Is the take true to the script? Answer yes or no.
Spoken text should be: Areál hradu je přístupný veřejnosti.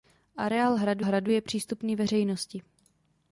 no